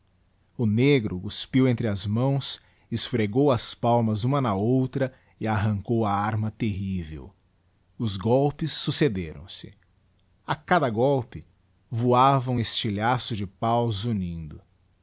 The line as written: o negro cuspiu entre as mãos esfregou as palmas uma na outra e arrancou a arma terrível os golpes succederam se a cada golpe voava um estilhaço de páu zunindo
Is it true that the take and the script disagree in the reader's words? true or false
false